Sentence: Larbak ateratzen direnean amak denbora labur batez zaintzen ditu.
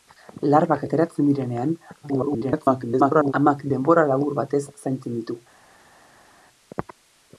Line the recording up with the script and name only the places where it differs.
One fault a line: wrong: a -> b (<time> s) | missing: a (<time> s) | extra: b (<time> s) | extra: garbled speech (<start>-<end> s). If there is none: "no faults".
extra: garbled speech (2.0-3.3 s)